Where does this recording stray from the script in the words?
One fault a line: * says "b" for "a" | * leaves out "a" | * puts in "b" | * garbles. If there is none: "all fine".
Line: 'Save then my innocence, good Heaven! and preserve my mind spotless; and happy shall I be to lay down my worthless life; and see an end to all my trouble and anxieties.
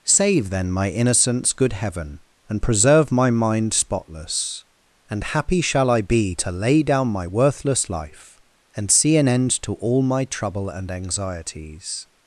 all fine